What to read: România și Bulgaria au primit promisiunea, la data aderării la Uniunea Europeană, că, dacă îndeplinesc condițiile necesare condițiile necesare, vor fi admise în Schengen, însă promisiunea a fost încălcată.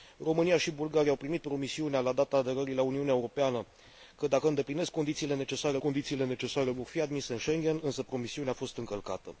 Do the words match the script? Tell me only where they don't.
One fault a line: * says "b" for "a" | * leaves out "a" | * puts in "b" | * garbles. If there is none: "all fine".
all fine